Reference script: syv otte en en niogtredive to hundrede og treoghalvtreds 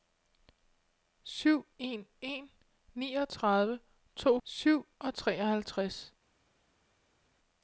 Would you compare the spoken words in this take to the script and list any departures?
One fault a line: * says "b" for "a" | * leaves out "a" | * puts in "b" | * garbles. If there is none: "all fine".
* leaves out "otte"
* says "syv" for "hundrede"